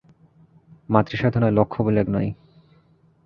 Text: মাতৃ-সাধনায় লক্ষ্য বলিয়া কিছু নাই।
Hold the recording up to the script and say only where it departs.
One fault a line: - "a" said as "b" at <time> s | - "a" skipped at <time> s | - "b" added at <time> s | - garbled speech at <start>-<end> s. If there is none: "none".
- "কিছু" skipped at 2.0 s